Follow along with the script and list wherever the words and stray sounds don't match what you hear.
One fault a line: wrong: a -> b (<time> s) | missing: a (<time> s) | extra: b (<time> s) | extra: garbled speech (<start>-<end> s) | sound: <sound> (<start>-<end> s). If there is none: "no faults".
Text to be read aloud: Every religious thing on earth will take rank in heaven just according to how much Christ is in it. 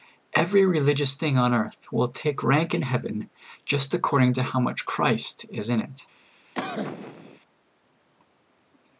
sound: cough (6.6-7.4 s)